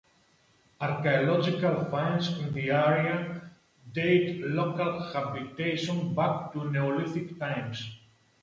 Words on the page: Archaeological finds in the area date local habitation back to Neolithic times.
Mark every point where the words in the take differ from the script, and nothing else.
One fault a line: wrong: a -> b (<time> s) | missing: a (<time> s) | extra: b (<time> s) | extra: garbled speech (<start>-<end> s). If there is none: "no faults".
no faults